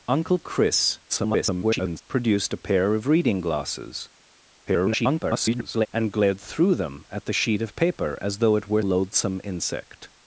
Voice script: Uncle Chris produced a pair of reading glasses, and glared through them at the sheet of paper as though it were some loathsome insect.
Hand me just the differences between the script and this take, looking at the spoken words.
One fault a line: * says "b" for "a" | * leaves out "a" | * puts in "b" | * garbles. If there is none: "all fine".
* garbles
* garbles
* leaves out "some"